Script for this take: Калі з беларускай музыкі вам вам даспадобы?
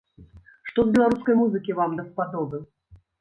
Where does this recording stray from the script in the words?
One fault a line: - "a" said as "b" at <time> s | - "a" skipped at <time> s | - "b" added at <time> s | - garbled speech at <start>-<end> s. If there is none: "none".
- "Калі" said as "Што" at 0.7 s
- "вам" skipped at 2.0 s